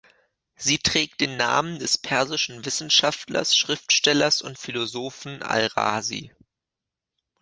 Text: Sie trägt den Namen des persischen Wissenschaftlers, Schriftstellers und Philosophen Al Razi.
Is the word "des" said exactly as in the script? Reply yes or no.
yes